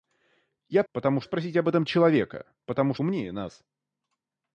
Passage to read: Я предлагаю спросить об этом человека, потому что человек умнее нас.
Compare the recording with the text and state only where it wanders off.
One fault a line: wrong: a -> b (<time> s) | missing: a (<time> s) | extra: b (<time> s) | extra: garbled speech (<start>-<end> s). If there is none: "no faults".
wrong: предлагаю -> потому (0.9 s)
missing: что человек (3.0 s)